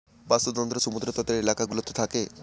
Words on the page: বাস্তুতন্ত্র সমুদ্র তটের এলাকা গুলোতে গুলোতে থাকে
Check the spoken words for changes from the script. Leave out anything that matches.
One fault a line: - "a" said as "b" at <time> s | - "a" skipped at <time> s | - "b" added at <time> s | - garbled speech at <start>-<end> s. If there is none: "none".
- "গুলোতে" skipped at 1.9 s